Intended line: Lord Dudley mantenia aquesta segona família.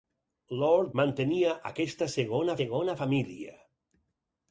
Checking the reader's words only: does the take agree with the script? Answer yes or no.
no